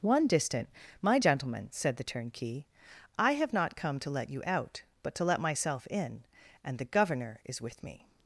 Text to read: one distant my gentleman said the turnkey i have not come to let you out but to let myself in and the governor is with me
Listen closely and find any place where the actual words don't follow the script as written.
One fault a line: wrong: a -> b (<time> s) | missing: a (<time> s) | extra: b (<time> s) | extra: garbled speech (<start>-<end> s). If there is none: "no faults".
no faults